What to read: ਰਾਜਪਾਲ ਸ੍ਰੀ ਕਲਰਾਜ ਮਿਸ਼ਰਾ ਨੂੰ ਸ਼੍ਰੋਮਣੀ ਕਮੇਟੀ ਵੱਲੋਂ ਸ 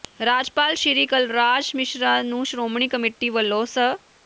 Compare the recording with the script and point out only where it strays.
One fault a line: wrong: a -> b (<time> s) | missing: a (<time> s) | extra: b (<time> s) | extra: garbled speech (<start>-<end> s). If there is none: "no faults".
no faults